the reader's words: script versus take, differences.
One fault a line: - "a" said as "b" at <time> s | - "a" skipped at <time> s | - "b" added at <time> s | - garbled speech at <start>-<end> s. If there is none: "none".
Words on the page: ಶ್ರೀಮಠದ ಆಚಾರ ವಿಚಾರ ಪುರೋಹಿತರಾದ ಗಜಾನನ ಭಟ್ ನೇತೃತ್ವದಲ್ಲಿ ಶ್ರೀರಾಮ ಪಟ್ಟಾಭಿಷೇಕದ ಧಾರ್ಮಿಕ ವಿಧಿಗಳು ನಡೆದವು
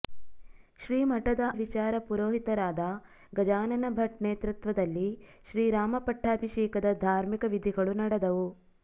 - "ಆಚಾರ" skipped at 1.4 s